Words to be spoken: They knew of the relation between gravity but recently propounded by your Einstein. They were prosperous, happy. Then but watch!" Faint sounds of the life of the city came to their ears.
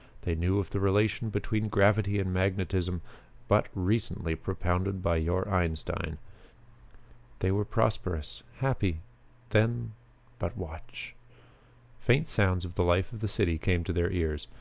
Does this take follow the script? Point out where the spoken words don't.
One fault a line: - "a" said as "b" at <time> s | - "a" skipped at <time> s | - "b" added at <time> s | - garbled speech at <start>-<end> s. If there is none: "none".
- "and magnetism" added at 2.2 s